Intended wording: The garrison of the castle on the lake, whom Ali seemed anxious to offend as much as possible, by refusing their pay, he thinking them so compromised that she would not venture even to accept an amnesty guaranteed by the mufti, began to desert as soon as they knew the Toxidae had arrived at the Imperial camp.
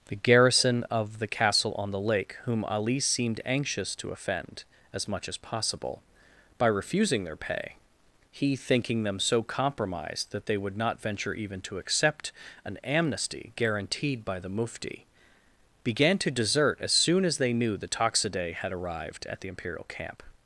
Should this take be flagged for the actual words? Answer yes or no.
yes